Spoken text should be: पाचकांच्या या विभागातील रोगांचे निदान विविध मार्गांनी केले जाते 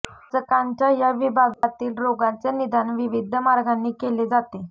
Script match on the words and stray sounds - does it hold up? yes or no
no